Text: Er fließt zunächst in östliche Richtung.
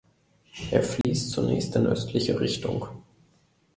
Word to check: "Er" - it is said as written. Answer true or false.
true